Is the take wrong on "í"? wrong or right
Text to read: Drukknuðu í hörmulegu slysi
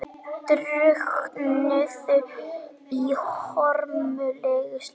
right